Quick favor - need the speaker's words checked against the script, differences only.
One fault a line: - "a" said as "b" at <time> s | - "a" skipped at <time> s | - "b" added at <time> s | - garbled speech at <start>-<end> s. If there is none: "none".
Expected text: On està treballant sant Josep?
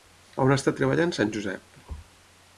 none